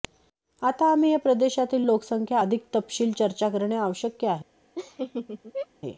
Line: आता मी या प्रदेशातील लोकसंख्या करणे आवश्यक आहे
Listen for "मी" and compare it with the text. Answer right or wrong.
wrong